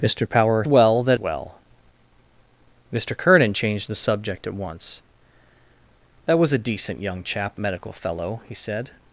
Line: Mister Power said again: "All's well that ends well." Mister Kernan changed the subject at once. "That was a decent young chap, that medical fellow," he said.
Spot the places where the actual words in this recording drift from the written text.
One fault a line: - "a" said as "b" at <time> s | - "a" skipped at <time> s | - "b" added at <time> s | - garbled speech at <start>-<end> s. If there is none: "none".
- "said again All's" skipped at 0.7 s
- "ends" skipped at 1.2 s
- "that" skipped at 7.6 s